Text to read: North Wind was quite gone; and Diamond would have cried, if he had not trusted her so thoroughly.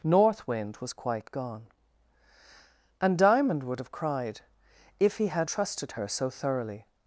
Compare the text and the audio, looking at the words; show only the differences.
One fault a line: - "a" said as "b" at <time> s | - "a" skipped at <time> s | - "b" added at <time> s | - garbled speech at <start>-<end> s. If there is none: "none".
- "not" skipped at 5.5 s